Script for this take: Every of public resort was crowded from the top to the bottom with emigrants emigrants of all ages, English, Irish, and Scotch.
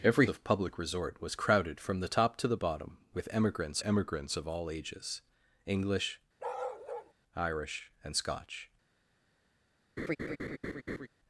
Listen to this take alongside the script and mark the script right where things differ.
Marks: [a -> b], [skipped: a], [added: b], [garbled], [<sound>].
Every of public resort was crowded from the top to the bottom with emigrants emigrants of all ages, English, [bark] Irish, and Scotch. [laugh]